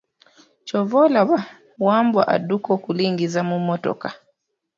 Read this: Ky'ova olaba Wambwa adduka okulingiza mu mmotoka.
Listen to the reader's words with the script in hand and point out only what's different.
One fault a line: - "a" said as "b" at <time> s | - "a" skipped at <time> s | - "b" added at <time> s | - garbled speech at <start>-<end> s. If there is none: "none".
none